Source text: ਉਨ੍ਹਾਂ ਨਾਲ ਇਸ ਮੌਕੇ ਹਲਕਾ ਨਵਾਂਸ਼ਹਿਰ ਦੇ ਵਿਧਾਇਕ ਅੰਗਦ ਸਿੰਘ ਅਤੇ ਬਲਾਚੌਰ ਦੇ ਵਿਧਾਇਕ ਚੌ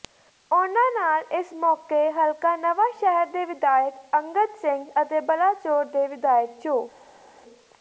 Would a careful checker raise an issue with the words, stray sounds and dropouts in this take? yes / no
no